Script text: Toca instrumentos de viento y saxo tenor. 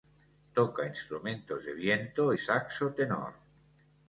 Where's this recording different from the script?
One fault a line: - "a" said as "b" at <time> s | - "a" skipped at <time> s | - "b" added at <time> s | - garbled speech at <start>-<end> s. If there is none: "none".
- "y" skipped at 2.3 s